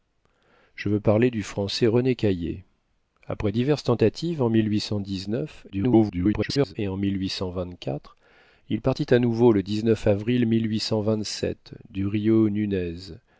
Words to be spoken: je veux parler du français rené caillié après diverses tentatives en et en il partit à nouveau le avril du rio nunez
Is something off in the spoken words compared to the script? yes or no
yes